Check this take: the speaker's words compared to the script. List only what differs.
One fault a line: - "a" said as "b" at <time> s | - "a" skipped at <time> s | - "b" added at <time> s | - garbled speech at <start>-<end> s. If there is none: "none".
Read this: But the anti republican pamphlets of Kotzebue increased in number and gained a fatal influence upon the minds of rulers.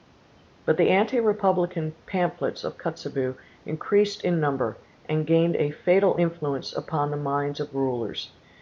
none